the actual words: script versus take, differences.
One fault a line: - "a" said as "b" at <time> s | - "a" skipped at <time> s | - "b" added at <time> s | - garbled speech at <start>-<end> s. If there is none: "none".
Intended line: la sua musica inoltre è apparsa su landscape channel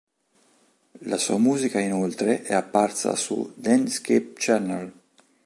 none